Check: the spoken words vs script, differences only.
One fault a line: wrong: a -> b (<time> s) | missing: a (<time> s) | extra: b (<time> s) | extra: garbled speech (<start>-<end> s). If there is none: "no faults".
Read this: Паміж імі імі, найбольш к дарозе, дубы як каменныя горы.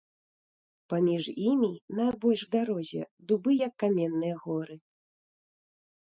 missing: імі (1.7 s)